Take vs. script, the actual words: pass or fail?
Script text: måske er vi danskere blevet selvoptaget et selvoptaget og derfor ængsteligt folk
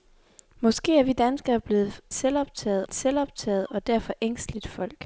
pass